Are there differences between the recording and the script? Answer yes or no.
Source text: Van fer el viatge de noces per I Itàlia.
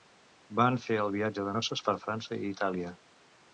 yes